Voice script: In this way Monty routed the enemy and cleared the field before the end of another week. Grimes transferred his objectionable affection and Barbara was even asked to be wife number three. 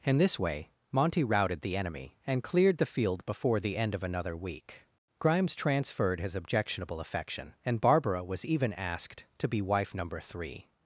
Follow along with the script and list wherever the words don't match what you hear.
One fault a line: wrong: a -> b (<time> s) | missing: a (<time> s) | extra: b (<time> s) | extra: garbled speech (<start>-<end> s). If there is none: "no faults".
no faults